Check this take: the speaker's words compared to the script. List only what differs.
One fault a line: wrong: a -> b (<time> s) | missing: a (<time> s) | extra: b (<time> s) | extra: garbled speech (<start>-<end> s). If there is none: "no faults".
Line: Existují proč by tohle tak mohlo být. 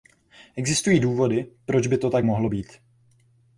extra: důvody (1.0 s)
wrong: tohle -> to (2.0 s)